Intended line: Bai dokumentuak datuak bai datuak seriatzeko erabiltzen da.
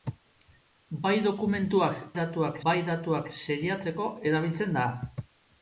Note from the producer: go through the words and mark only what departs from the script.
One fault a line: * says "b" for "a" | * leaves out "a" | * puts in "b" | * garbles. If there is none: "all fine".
all fine